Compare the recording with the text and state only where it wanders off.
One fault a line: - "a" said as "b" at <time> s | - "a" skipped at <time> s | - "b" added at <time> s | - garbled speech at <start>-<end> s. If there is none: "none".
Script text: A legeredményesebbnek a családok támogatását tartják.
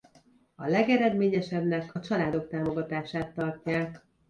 none